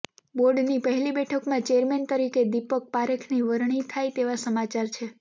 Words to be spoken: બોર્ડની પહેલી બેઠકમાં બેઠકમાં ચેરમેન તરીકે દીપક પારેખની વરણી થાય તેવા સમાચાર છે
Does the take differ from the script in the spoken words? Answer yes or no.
yes